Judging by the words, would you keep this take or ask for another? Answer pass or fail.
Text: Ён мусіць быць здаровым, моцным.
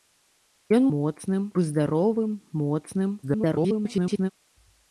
fail